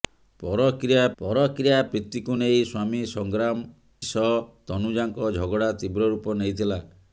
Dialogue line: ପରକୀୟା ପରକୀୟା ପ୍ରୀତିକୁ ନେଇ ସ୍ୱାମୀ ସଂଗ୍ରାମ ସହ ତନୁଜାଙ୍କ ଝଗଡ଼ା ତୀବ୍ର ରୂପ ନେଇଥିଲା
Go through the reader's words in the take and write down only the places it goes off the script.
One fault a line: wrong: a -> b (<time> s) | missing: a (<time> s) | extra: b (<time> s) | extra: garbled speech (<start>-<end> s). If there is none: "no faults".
no faults